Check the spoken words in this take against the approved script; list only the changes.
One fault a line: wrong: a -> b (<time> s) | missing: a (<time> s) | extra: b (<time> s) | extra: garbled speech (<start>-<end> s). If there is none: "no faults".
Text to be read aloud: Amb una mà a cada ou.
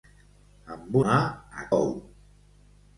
missing: una (1.0 s)
missing: cada (1.7 s)